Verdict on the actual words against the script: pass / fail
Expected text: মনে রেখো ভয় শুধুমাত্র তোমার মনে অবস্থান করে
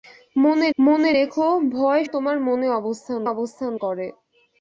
fail